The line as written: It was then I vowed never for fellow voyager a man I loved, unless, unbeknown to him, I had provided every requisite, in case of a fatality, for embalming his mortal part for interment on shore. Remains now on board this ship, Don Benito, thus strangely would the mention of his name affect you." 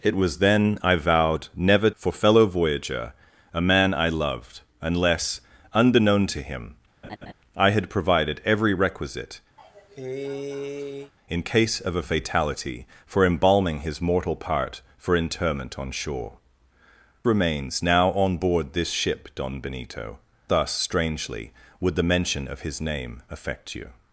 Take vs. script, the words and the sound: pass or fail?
fail